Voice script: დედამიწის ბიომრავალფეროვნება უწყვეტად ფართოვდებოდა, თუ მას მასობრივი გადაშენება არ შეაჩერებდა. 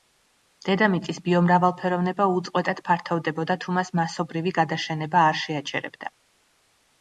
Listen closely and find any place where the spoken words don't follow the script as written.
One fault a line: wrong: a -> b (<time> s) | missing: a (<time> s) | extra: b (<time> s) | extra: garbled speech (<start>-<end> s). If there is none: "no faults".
no faults